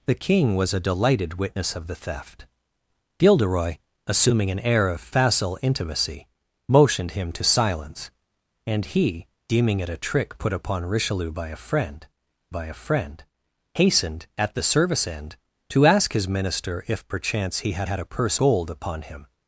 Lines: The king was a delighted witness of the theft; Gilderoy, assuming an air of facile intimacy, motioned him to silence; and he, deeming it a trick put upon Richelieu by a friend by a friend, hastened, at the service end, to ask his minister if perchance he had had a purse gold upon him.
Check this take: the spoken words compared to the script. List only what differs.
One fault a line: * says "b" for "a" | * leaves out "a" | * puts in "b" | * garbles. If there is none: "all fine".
all fine